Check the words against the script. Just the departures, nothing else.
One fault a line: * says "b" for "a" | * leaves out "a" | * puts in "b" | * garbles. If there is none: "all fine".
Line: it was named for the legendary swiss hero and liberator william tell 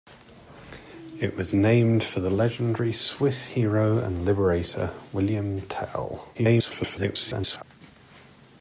* garbles